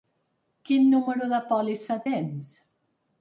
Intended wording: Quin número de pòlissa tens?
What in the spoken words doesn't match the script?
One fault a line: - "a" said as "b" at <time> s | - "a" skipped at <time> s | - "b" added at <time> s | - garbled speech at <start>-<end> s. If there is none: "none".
none